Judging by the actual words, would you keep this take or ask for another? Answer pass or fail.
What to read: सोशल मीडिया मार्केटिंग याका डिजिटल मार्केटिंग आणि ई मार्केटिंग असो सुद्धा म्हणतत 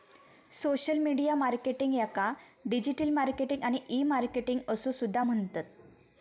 pass